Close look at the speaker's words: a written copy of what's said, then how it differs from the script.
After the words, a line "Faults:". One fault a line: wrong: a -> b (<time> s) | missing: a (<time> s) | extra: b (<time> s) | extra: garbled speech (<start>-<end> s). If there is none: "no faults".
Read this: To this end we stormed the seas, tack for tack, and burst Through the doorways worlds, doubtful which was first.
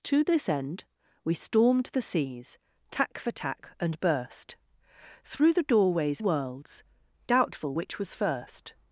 To this end we stormed the seas, tack for tack, and burst Through the doorways worlds, doubtful which was first.
Faults:
no faults